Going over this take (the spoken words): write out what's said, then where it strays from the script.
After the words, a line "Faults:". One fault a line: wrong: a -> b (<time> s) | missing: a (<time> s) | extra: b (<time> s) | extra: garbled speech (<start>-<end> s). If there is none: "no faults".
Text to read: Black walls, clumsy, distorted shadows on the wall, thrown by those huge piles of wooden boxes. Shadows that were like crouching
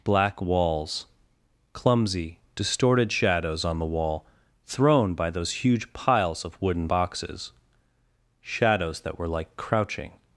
Black walls, clumsy, distorted shadows on the wall, thrown by those huge piles of wooden boxes. Shadows that were like crouching
Faults:
no faults